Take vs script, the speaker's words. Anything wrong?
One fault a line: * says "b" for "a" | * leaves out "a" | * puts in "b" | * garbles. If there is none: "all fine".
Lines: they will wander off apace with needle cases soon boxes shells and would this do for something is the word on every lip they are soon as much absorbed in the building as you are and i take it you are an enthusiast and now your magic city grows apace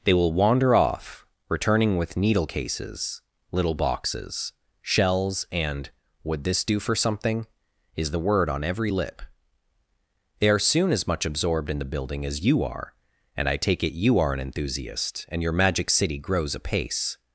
* says "returning" for "apace"
* says "little" for "soon"
* leaves out "now"